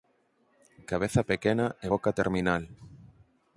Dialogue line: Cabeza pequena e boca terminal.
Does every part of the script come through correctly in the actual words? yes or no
yes